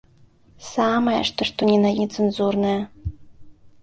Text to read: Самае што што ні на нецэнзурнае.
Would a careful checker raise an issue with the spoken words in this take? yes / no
no